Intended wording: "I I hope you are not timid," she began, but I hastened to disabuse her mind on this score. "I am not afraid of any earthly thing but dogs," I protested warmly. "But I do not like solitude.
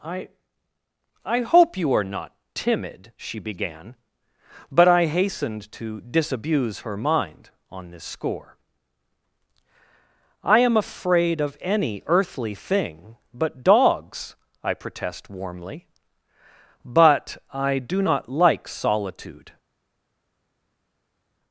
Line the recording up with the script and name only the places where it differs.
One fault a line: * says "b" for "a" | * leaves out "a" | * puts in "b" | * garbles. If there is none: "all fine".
* leaves out "not"
* says "protest" for "protested"